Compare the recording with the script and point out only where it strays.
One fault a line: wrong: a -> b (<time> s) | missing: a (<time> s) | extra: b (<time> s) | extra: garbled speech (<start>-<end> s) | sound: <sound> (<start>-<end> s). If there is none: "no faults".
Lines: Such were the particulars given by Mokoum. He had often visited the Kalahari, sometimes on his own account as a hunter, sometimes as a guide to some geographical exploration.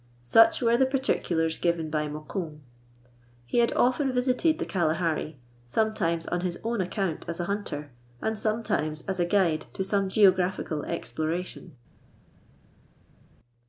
extra: and (8.2 s)